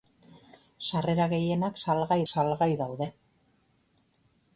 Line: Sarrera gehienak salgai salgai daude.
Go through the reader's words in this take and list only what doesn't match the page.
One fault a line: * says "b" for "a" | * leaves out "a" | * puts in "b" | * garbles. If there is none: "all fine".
all fine